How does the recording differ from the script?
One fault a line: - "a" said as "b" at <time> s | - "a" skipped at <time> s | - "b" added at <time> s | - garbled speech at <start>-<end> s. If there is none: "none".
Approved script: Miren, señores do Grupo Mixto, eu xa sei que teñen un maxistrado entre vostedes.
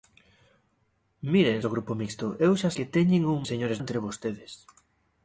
- "señores" skipped at 1.6 s
- "sei" skipped at 2.7 s
- "maxistrado" said as "señores" at 3.5 s